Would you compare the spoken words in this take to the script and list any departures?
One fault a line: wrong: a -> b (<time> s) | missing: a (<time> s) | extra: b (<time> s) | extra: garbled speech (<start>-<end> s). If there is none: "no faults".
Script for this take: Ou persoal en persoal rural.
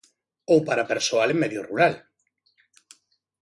extra: para (0.7 s)
wrong: persoal -> medio (1.4 s)